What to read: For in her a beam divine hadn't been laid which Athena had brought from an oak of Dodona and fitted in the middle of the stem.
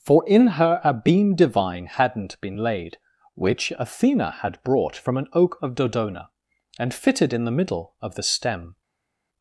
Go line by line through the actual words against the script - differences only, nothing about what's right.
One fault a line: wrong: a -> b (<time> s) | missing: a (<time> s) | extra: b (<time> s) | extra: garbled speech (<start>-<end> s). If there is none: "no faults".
no faults